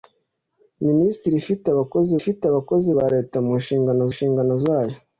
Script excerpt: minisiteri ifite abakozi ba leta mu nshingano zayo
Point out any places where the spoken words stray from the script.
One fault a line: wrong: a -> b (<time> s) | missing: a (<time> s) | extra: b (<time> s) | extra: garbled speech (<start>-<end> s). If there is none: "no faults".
extra: ifite abakozi (2.2 s)
extra: nshingano (4.1 s)